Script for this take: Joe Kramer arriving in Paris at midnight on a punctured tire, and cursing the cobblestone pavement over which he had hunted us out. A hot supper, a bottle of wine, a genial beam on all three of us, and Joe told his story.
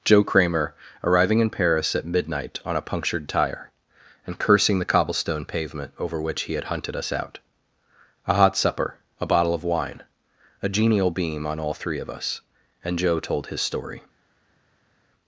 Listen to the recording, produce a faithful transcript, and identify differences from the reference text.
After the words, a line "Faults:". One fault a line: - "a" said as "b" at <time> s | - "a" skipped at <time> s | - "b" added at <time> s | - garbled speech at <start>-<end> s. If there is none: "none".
Joe Kramer arriving in Paris at midnight on a punctured tire, and cursing the cobblestone pavement over which he had hunted us out. A hot supper, a bottle of wine, a genial beam on all three of us, and Joe told his story.
Faults:
none